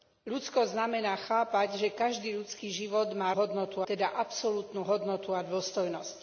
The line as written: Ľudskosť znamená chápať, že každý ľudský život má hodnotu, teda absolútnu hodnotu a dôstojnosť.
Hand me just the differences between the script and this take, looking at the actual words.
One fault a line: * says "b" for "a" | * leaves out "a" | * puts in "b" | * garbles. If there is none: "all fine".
all fine